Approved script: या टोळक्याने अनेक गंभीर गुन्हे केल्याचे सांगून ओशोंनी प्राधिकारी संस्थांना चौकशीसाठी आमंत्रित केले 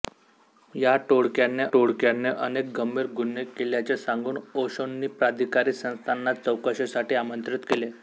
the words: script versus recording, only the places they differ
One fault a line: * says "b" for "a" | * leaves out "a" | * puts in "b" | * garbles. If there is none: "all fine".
* puts in "टोळक्याने"